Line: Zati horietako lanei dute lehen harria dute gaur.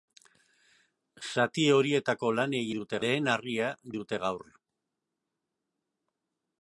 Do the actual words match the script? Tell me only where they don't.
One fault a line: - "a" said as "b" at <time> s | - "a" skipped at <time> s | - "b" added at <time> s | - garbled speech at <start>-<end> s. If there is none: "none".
none